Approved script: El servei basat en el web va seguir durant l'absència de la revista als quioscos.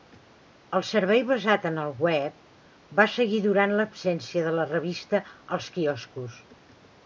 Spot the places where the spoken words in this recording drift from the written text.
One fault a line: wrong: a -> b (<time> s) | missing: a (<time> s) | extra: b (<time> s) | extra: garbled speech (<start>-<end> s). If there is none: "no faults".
no faults